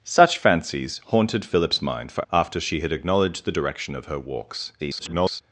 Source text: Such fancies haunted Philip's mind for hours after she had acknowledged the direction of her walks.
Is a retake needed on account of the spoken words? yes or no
yes